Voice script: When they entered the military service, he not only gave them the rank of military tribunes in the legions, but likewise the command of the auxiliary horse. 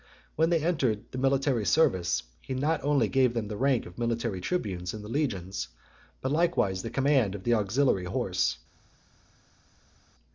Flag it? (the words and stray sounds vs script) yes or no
no